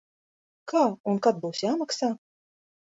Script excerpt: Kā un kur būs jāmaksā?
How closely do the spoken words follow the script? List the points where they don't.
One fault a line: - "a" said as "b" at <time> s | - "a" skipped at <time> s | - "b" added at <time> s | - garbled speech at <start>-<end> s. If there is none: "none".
- "kur" said as "kad" at 1.3 s